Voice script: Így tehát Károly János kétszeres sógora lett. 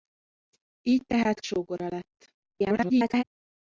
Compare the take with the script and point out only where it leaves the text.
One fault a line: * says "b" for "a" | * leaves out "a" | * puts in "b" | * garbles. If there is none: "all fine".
* leaves out "Károly János kétszeres"
* garbles